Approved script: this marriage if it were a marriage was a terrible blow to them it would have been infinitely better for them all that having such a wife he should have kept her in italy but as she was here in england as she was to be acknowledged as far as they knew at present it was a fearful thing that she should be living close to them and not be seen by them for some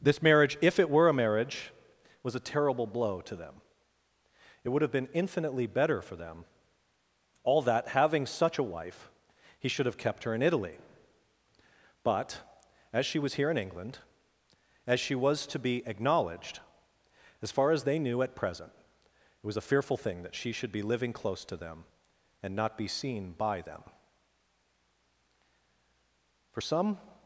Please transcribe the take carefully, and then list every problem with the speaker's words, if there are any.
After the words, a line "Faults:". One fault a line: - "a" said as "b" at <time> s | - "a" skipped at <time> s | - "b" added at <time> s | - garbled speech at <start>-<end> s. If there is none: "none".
this marriage if it were a marriage was a terrible blow to them it would have been infinitely better for them all that having such a wife he should have kept her in italy but as she was here in england as she was to be acknowledged as far as they knew at present it was a fearful thing that she should be living close to them and not be seen by them for some
Faults:
none